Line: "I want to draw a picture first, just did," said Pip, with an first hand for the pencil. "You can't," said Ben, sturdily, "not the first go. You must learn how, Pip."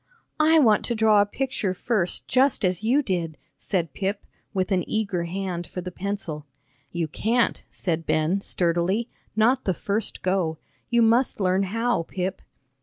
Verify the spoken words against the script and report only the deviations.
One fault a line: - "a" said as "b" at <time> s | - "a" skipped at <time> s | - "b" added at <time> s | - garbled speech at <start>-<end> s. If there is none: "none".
- "as you" added at 2.6 s
- "first" said as "eager" at 4.9 s